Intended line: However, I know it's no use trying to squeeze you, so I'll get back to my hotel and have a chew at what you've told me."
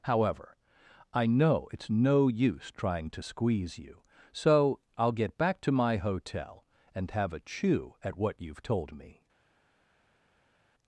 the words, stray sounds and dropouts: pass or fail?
pass